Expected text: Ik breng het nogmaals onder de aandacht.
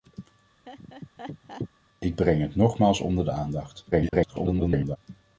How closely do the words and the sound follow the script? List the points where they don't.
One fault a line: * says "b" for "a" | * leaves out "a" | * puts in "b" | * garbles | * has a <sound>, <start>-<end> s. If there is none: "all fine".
* has a laugh, 0.7-1.7 s
* garbles